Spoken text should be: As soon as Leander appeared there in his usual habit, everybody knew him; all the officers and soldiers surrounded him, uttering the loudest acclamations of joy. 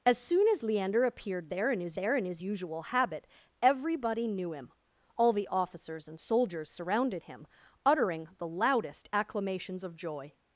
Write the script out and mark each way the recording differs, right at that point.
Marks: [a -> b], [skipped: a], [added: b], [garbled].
As soon as Leander appeared there in his [added: there in his] usual habit, everybody knew him; all the officers and soldiers surrounded him, uttering the loudest acclamations of joy.